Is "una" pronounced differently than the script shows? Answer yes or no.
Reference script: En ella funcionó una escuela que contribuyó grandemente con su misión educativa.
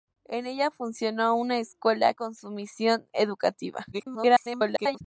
no